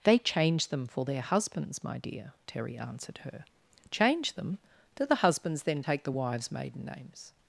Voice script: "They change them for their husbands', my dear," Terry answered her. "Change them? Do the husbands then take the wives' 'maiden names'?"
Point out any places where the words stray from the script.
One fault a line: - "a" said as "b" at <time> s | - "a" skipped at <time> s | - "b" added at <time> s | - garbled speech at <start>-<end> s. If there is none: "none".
none